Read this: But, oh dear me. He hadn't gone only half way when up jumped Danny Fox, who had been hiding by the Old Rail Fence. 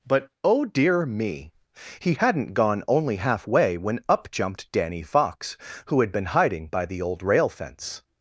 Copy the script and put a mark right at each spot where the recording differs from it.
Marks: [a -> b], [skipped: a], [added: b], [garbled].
But, oh dear me. He hadn't gone only half way when up jumped Danny Fox, who had been hiding by the Old Rail Fence.